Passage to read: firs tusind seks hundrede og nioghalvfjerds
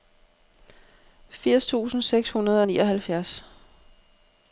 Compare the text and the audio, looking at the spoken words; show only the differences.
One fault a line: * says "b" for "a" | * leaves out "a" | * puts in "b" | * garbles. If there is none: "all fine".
all fine